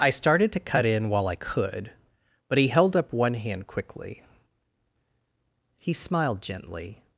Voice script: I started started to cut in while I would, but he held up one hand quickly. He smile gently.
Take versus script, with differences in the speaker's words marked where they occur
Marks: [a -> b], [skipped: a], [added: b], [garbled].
I started [skipped: started] to cut in while I [would, -> could] but he held up one hand quickly. He [smile -> smiled] gently.